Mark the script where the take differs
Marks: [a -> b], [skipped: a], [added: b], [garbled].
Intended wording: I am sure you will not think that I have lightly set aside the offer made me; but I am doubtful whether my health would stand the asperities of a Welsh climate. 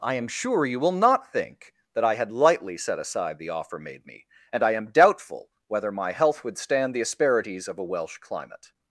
I am sure you will not think that I [have -> had] lightly set aside the offer made me; [but -> and] I am doubtful whether my health would stand the asperities of a Welsh climate.